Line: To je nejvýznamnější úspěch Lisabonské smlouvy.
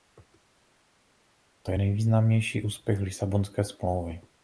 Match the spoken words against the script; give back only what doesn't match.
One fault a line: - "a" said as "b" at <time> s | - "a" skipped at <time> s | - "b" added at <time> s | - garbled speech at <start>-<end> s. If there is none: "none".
none